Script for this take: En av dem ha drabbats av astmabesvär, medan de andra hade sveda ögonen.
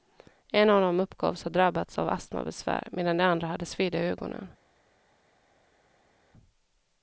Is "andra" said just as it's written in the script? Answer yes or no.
yes